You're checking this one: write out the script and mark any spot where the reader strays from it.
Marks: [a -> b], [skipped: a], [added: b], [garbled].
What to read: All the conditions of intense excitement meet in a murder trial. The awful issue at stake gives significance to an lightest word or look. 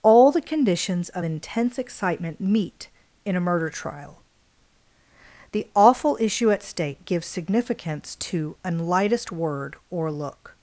All the conditions of intense excitement meet in a murder trial. The awful issue at stake gives significance to an lightest word or look.